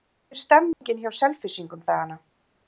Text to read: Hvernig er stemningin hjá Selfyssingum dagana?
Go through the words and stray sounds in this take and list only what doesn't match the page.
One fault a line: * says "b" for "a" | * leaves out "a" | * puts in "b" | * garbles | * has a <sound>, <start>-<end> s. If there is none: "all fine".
* has a dropout, 0.7-0.8 s